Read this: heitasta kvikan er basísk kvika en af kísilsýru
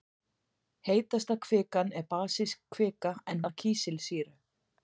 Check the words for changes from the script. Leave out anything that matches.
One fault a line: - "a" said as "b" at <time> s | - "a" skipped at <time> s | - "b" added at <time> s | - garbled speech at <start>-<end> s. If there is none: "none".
none